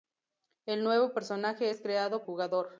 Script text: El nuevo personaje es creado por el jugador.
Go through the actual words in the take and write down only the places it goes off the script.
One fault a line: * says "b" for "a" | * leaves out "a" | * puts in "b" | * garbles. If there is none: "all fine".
* leaves out "por el"